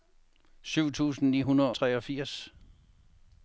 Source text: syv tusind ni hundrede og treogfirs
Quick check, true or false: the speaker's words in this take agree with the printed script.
false